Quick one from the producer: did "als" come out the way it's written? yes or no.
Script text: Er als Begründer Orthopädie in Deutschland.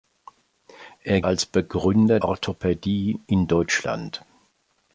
yes